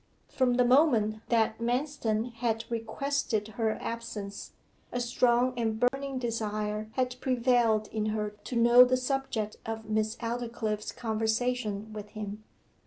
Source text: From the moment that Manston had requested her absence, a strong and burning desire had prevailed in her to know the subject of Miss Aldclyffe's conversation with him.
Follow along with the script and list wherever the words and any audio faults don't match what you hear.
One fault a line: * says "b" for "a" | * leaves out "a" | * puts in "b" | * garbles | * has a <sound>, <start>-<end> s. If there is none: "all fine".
* has a dropout, 5.9-5.9 s